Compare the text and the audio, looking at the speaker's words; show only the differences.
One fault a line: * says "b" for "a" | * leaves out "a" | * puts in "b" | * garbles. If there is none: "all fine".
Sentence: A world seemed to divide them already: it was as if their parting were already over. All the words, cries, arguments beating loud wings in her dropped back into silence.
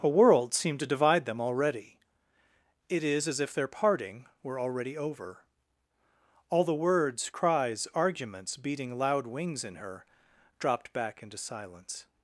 * says "is" for "was"